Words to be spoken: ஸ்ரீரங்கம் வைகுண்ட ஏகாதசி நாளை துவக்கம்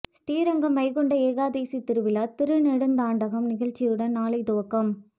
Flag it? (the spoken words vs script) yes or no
yes